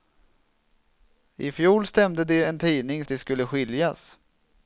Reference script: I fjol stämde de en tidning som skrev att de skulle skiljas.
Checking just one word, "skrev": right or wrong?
wrong